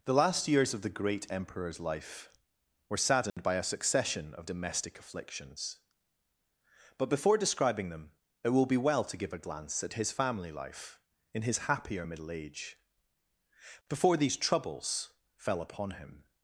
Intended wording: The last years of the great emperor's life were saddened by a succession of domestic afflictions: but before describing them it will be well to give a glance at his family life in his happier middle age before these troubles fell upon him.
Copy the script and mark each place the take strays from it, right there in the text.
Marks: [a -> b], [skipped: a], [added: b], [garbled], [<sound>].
The last years of the great emperor's life were saddened [dropout] by a succession of domestic afflictions: but before describing them it will be well to give a glance at his family life in his happier middle age before these troubles fell upon him.